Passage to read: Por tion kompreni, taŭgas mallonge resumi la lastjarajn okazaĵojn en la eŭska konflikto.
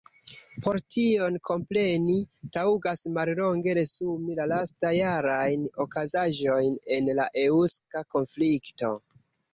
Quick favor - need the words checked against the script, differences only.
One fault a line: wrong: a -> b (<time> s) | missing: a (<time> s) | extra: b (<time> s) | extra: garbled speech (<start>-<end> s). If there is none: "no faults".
no faults